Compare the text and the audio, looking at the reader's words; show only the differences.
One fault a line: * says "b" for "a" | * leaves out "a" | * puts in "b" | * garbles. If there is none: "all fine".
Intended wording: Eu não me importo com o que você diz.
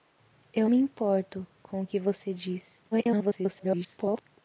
* leaves out "não"
* garbles